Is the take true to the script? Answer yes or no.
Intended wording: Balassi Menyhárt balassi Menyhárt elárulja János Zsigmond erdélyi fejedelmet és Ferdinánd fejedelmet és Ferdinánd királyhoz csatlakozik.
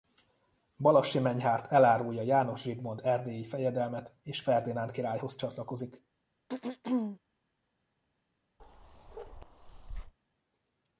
no